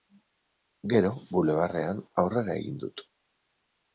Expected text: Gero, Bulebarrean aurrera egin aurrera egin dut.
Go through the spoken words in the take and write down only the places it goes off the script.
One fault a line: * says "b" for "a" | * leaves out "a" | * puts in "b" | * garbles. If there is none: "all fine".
* leaves out "aurrera egin"